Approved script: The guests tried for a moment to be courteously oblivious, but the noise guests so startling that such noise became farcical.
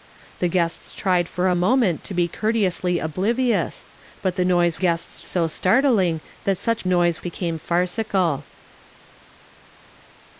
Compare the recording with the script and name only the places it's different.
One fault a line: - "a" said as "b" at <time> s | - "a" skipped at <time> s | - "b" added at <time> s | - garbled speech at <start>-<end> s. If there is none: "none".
none